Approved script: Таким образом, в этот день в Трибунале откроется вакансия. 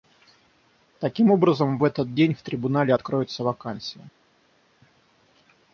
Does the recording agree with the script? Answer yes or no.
yes